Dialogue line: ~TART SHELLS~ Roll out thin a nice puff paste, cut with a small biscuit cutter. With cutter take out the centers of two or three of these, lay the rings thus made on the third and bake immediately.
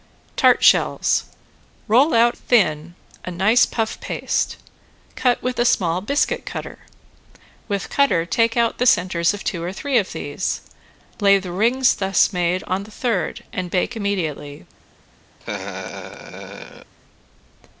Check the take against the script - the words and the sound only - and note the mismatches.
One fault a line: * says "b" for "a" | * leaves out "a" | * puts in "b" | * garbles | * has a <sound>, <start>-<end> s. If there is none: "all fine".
* has a laugh, 15.4-16.9 s